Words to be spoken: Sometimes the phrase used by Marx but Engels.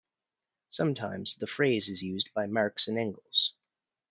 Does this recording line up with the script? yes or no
no